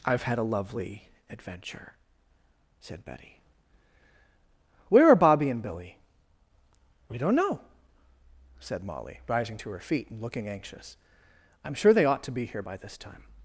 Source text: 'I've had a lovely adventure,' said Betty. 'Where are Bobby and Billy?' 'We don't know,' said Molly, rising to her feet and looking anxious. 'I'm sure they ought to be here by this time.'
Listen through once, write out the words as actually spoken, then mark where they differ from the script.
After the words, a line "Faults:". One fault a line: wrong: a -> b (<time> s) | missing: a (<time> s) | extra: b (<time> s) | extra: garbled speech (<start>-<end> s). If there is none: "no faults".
'I've had a lovely adventure,' said Betty. 'Where are Bobby and Billy?' 'We don't know,' said Molly, rising to her feet and looking anxious. 'I'm sure they ought to be here by this time.'
Faults:
no faults